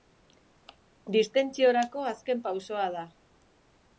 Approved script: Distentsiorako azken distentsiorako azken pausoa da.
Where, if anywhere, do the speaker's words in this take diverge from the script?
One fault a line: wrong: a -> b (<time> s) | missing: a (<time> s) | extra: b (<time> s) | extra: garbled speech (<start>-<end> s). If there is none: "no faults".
missing: distentsiorako azken (2.4 s)